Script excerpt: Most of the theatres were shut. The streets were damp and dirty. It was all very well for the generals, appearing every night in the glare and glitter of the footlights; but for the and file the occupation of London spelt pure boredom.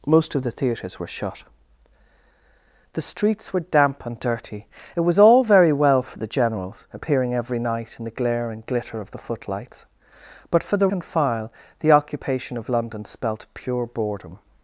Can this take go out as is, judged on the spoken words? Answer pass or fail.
pass